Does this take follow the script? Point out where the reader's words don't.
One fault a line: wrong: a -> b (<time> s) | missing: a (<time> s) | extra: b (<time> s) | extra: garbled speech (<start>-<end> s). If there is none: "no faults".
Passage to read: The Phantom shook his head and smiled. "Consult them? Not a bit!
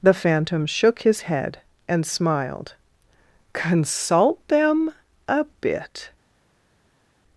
missing: Not (4.9 s)